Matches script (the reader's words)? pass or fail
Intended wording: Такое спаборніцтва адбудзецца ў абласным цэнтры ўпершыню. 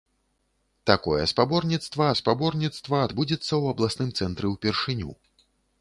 fail